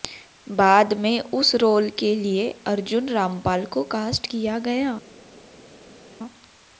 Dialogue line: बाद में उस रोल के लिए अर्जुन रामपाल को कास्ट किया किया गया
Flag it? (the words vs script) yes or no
yes